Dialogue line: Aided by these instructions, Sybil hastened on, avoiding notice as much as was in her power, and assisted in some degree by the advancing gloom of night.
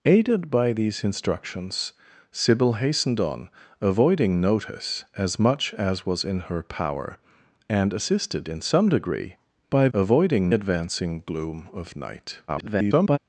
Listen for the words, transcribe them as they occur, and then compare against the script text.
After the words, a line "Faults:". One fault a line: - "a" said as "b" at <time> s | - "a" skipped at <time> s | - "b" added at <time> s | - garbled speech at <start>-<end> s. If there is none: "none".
Aided by these instructions, Sybil hastened on, avoiding notice as much as was in her power, and assisted in some degree by avoiding advancing gloom of night. [garbled]
Faults:
- "the" said as "avoiding" at 9.9 s
- garbled speech at 12.5-13.2 s